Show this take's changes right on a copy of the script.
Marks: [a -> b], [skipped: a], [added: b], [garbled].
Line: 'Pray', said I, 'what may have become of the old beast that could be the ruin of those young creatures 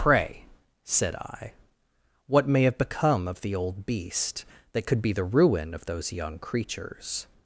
'Pray', said I, 'what may have become of the old beast that could be the ruin of those young creatures